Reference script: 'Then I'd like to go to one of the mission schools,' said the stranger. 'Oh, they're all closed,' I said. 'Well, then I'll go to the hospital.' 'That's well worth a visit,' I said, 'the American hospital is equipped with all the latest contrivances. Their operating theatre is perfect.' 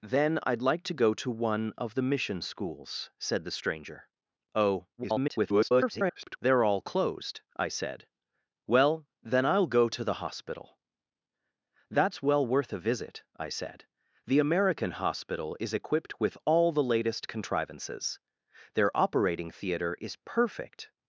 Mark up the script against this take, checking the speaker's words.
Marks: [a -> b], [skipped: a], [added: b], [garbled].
'Then I'd like to go to one of the mission schools,' said the stranger. 'Oh, [garbled] they're all closed,' I said. 'Well, then I'll go to the hospital.' 'That's well worth a visit,' I said, 'the American hospital is equipped with all the latest contrivances. Their operating theatre is perfect.'